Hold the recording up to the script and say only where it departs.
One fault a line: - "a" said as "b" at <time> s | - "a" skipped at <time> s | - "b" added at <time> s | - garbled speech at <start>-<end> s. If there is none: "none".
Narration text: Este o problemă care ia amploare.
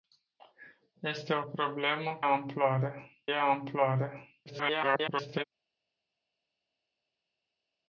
- "care" said as "amploare" at 2.2 s
- garbled speech at 4.5-5.4 s